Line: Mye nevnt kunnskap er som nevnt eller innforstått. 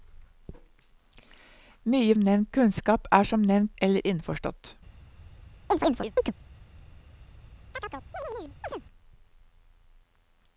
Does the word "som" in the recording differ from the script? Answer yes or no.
no